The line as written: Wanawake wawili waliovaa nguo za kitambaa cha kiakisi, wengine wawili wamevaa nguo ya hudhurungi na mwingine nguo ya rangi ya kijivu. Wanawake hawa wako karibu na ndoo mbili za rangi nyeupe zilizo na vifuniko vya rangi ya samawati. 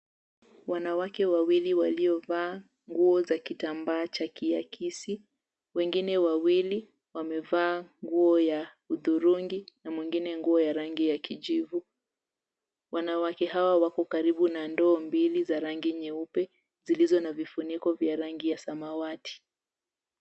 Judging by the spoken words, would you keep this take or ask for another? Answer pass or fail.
pass